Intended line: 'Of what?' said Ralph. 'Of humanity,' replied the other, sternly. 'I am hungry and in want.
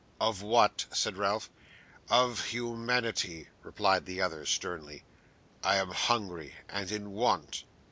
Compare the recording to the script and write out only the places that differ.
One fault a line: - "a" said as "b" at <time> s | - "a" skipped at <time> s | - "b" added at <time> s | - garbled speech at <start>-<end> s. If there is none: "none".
none